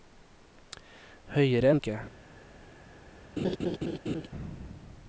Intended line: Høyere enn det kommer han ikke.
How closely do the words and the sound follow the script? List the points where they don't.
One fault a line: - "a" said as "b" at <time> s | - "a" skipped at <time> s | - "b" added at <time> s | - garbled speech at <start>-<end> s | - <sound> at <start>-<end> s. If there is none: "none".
- "det kommer han" skipped at 1.8 s
- laugh at 3.4-4.3 s